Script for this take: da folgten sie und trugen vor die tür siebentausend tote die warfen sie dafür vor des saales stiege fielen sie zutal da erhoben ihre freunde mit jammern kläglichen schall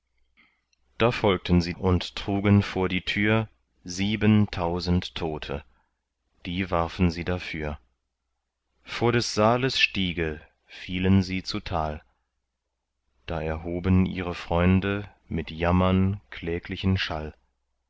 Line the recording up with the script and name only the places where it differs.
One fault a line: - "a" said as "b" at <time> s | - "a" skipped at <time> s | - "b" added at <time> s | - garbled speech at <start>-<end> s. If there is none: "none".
none